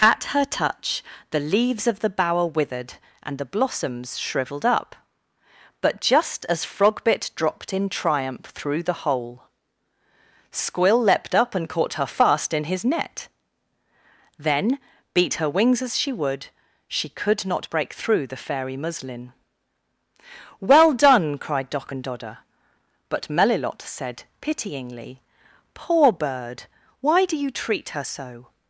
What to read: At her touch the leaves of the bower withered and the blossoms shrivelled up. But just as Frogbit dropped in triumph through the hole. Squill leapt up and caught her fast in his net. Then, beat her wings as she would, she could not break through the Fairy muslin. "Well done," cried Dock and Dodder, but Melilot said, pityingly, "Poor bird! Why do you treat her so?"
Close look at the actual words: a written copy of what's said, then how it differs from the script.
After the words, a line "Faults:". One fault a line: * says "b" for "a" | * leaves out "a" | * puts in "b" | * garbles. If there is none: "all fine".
At her touch the leaves of the bower withered and the blossoms shrivelled up. But just as Frogbit dropped in triumph through the hole. Squill leapt up and caught her fast in his net. Then, beat her wings as she would, she could not break through the Fairy muslin. "Well done," cried Dock and Dodder, but Melilot said, pityingly, "Poor bird! Why do you treat her so?"
Faults:
all fine